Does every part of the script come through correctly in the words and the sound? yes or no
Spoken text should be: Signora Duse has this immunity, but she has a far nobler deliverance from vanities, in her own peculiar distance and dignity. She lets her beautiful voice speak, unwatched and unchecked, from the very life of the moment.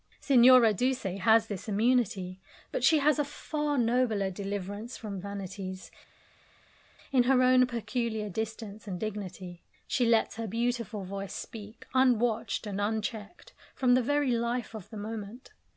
yes